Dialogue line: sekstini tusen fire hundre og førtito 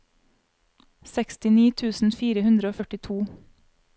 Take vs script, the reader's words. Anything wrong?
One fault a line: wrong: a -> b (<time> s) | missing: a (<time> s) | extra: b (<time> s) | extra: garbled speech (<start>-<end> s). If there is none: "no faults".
no faults